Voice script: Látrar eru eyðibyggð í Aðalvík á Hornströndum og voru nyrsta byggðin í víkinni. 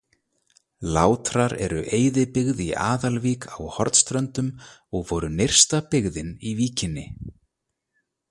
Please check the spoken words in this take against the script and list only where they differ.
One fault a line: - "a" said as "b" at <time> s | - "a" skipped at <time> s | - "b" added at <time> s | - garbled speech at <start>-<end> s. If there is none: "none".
none